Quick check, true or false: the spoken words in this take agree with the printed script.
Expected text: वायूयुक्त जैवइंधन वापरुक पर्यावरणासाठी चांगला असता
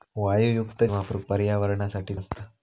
false